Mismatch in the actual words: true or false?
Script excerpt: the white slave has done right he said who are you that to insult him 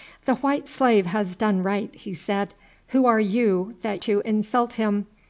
false